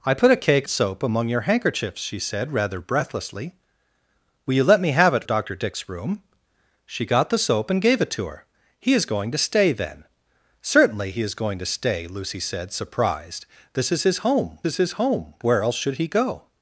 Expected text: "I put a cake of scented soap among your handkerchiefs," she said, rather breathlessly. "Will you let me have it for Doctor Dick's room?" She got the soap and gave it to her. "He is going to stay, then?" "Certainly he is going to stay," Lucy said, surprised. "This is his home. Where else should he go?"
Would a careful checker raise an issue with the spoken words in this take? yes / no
yes